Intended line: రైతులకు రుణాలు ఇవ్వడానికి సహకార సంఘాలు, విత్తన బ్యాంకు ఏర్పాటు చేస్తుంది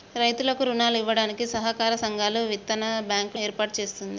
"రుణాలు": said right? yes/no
yes